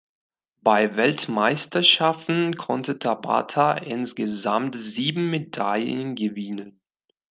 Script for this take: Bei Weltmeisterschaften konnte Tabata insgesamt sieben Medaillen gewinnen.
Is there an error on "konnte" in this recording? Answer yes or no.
no